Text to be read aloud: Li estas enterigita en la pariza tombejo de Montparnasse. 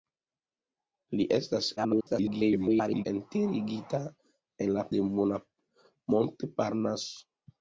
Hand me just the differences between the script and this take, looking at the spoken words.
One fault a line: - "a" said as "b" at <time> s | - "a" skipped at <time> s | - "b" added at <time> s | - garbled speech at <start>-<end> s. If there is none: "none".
- garbled speech at 1.8-3.1 s
- "pariza tombejo" skipped at 4.8 s